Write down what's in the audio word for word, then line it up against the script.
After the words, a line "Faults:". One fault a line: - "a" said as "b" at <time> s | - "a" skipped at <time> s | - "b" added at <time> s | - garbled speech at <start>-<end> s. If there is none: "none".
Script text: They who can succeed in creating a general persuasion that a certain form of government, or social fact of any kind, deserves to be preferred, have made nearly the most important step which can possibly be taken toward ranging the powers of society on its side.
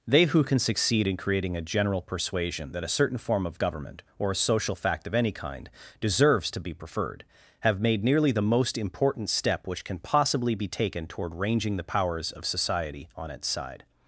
They who can succeed in creating a general persuasion that a certain form of government, or a social fact of any kind, deserves to be preferred, have made nearly the most important step which can possibly be taken toward ranging the powers of society on its side.
Faults:
- "a" added at 4.3 s